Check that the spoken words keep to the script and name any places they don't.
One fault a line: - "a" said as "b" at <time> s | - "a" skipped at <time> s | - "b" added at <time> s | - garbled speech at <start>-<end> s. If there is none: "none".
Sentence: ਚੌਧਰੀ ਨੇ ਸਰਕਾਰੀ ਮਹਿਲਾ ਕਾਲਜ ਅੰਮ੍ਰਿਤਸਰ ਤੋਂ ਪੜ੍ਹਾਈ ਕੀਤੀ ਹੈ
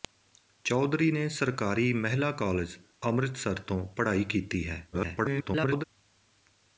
- garbled speech at 4.9-5.8 s